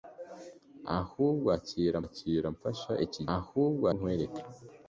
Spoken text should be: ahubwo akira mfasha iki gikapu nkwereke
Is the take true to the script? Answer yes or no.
no